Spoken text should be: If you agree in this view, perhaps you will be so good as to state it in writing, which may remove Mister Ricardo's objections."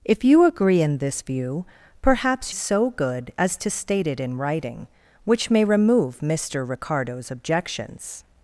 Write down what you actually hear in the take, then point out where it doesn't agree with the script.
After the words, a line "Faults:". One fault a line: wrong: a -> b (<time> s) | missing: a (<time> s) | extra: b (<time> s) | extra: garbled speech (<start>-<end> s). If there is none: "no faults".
If you agree in this view, perhaps so good as to state it in writing, which may remove Mister Ricardo's objections."
Faults:
missing: you will be (2.5 s)